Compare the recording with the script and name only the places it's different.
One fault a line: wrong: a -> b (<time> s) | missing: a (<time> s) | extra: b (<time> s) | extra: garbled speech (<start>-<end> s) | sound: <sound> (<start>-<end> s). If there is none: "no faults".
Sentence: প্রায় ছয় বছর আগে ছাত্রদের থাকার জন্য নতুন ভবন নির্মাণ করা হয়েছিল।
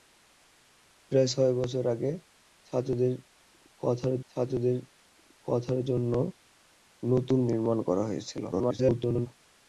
extra: ছাত্রদের থাকার (4.3 s)
missing: ভবন (7.4 s)
extra: garbled speech (8.5-9.3 s)